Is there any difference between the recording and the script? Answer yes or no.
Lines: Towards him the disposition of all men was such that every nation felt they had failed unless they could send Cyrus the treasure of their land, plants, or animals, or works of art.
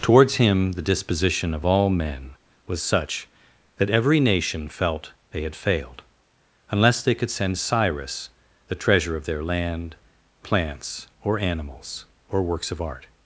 no